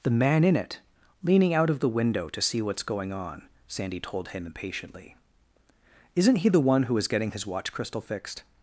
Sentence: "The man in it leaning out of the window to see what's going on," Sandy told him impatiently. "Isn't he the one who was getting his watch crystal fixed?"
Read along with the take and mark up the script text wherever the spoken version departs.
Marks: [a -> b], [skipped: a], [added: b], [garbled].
"The man in it leaning out of the window to see what's going on," Sandy told him impatiently. "Isn't he the one who [was -> is] getting his watch crystal fixed?"